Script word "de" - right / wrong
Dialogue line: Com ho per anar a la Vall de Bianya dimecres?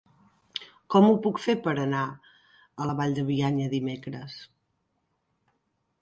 right